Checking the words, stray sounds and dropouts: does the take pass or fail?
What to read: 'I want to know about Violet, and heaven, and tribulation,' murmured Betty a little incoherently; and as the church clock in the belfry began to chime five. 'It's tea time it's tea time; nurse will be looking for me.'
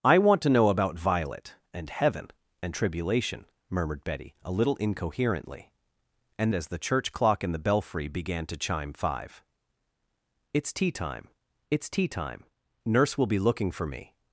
pass